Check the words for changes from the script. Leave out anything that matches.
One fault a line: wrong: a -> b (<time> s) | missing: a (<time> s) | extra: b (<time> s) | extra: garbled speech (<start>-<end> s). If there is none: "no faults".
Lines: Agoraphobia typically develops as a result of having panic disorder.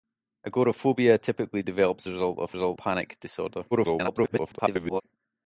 missing: as (2.1 s)
wrong: having -> result (2.5 s)
extra: garbled speech (3.7-5.0 s)